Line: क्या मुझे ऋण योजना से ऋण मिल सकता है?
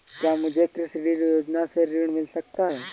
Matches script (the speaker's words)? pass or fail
fail